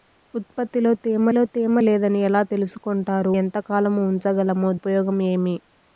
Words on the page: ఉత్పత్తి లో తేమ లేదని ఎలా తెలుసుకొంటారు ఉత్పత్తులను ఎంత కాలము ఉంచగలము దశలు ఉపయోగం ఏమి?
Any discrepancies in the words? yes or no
yes